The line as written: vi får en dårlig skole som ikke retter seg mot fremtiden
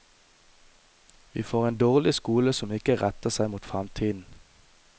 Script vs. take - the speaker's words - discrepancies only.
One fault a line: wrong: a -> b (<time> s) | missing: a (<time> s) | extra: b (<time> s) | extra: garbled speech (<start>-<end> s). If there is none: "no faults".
no faults